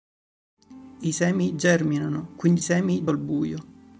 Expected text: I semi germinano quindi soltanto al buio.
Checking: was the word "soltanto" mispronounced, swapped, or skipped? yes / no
yes